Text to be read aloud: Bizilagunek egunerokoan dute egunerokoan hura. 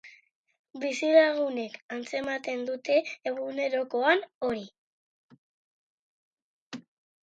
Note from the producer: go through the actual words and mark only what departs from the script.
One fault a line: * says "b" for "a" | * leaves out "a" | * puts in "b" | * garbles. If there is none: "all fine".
* says "antzematen" for "egunerokoan"
* says "hori" for "hura"